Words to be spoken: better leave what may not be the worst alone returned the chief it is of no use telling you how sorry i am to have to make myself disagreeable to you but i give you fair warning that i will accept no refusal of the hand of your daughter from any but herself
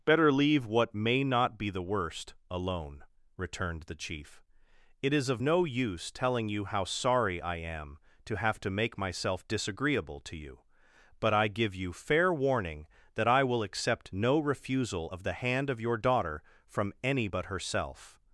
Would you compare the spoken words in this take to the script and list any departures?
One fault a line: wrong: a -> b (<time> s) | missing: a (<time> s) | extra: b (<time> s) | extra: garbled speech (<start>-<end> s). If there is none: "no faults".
no faults